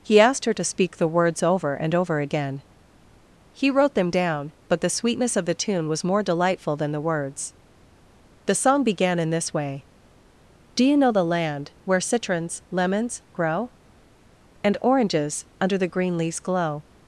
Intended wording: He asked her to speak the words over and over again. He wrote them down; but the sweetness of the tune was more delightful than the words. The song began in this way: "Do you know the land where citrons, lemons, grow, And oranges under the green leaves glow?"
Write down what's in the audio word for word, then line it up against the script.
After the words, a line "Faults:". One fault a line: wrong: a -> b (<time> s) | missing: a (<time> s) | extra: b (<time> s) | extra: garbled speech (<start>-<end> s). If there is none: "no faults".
He asked her to speak the words over and over again. He wrote them down; but the sweetness of the tune was more delightful than the words. The song began in this way: "Do you know the land where citrons, lemons, grow, And oranges under the green leaves glow?"
Faults:
no faults